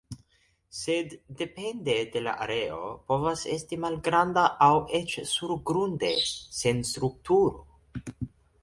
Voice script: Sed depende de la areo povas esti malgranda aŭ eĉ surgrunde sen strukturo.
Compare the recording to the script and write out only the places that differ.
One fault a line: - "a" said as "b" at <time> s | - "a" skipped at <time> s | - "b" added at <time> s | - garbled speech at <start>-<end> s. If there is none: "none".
none